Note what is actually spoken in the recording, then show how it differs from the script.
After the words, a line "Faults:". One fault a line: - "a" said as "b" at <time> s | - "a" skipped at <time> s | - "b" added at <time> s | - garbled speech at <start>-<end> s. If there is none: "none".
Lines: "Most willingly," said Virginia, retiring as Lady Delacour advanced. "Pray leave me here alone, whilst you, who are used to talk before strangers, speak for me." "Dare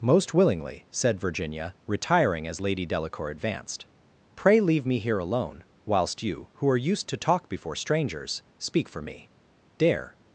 "Most willingly," said Virginia, retiring as Lady Delacour advanced. "Pray leave me here alone, whilst you, who are used to talk before strangers, speak for me." "Dare
Faults:
none